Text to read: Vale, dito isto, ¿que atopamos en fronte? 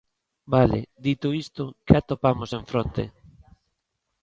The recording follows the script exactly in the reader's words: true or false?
true